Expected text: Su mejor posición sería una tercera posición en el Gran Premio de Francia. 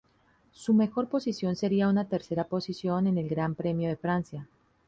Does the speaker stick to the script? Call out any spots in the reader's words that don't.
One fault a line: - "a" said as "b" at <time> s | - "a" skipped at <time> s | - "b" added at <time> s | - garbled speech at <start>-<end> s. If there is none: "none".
none